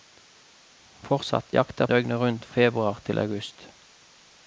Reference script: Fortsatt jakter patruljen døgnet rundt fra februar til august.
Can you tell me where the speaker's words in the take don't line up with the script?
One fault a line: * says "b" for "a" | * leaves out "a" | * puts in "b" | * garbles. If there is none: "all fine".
* leaves out "patruljen"
* leaves out "fra"